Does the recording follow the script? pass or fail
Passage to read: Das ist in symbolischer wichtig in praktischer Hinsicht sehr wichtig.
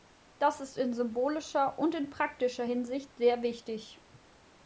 fail